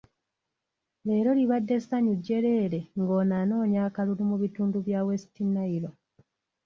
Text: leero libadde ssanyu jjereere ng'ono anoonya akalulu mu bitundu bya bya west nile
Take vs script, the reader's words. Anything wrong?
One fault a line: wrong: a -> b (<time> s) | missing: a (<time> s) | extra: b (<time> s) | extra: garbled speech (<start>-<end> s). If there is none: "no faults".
missing: bya (5.0 s)